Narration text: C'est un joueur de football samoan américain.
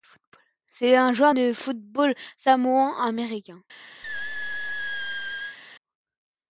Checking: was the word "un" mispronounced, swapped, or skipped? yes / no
no